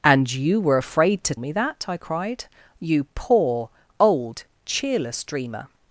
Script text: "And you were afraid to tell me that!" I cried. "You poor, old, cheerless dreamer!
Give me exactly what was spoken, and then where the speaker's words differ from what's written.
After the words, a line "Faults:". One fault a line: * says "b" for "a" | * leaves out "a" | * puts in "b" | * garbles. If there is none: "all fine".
"And you were afraid to me that!" I cried. "You poor, old, cheerless dreamer!
Faults:
* leaves out "tell"